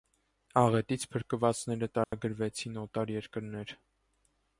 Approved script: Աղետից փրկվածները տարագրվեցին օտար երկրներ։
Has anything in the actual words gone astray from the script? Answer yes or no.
no